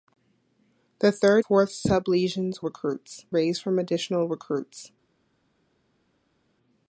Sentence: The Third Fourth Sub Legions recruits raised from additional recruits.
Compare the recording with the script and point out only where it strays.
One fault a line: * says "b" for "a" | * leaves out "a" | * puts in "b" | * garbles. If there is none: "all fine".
all fine